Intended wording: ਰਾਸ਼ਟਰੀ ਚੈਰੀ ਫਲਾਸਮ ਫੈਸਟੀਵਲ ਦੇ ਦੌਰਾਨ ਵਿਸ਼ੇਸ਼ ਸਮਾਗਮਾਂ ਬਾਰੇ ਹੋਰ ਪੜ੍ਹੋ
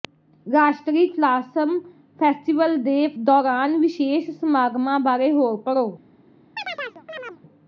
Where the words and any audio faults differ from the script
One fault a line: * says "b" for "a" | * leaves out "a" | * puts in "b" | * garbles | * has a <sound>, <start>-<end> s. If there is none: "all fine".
* leaves out "ਚੈਰੀ"
* has a chirp, 6.6-7.4 s